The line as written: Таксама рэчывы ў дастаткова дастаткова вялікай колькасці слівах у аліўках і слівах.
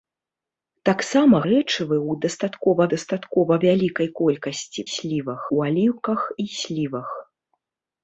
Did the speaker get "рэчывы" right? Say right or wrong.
right